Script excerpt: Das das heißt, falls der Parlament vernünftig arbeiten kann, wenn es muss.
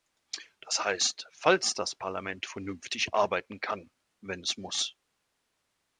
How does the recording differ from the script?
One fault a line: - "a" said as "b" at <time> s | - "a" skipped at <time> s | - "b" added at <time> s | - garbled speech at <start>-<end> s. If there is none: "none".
- "das" skipped at 0.8 s
- "der" said as "das" at 1.7 s